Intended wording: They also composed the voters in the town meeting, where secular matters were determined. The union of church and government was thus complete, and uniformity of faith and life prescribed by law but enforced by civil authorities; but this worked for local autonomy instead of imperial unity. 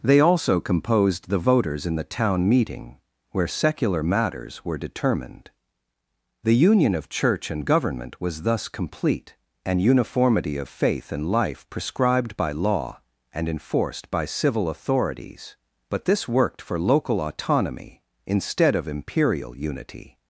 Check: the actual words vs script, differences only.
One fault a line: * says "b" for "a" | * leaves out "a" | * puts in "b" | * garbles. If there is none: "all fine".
* says "and" for "but"